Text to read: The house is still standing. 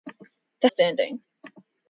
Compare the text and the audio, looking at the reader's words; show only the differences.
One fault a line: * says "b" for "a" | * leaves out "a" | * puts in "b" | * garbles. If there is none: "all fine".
* leaves out "house is still"